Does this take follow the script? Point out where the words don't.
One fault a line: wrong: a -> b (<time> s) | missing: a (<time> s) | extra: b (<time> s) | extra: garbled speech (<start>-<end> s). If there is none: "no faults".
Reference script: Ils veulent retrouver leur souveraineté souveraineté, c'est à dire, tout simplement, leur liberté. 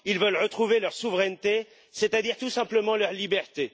missing: souveraineté (1.7 s)